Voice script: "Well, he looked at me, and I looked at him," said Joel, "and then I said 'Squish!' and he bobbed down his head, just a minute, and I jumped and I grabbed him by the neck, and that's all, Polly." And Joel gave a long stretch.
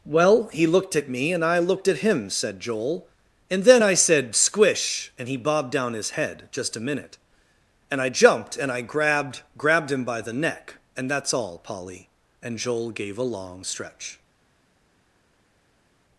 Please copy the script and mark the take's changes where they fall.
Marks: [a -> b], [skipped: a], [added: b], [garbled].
"Well, he looked at me, and I looked at him," said Joel, "and then I said 'Squish!' and he bobbed down his head, just a minute, and I jumped and I grabbed [added: grabbed] him by the neck, and that's all, Polly." And Joel gave a long stretch.